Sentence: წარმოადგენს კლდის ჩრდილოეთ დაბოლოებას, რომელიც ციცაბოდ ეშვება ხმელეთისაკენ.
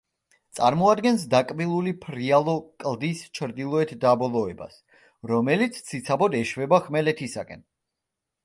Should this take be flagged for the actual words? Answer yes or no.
yes